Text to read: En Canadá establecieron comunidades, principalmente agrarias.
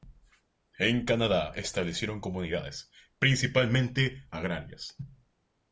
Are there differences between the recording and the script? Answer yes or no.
no